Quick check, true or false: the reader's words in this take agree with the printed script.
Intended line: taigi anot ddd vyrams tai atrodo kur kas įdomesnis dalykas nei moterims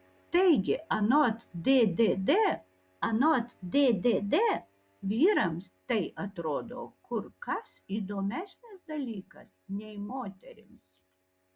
false